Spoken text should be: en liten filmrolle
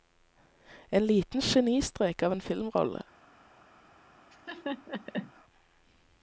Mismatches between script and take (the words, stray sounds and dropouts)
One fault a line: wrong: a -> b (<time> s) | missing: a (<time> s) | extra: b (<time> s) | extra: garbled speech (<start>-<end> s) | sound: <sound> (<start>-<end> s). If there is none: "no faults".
extra: genistrek av en (1.4 s)
sound: laugh (4.3-5.3 s)